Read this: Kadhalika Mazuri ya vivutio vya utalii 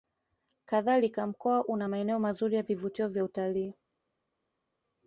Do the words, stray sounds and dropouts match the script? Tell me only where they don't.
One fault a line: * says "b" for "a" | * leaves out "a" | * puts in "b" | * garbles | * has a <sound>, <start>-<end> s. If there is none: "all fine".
* puts in "Mkoa una maeneo"